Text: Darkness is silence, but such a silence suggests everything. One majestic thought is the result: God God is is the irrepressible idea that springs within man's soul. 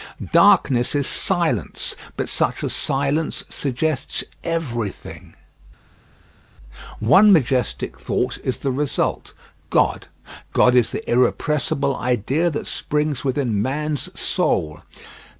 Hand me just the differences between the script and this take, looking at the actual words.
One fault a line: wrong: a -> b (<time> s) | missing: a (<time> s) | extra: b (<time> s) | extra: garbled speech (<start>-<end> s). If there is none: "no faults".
missing: is (10.9 s)